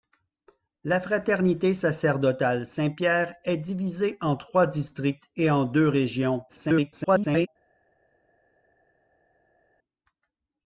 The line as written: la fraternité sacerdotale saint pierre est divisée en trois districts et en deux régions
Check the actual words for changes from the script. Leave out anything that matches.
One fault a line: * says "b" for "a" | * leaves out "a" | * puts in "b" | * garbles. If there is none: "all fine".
* garbles